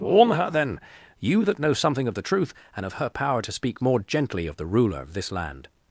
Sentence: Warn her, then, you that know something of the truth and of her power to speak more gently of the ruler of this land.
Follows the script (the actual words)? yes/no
yes